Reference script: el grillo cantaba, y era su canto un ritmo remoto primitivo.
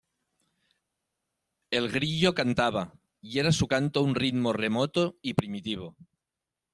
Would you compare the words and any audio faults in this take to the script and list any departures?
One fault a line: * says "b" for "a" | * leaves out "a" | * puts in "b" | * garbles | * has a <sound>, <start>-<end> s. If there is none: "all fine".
* puts in "y"